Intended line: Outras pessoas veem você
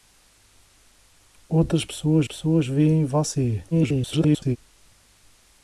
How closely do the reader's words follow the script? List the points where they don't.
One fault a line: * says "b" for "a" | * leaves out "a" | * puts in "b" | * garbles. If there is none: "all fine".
* puts in "pessoas"
* garbles